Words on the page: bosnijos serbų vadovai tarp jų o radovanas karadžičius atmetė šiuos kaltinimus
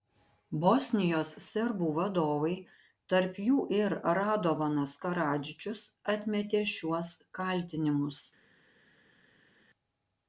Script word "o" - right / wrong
wrong